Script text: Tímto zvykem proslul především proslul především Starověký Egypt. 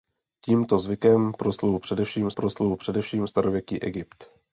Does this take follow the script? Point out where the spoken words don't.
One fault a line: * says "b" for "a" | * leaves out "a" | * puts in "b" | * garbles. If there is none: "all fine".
all fine